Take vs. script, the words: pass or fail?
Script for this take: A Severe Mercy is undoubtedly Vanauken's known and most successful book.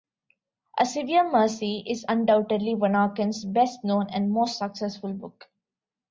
fail